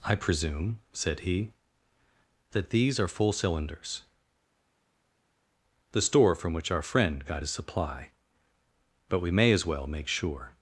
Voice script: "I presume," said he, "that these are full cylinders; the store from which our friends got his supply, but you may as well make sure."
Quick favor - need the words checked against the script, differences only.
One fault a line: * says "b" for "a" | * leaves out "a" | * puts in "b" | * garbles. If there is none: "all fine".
* says "friend" for "friends"
* says "we" for "you"